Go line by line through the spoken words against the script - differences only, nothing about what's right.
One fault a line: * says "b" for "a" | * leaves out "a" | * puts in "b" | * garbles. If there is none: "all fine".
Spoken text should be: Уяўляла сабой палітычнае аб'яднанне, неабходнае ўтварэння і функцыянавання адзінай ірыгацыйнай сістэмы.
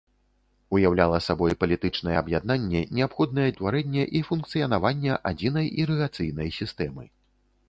all fine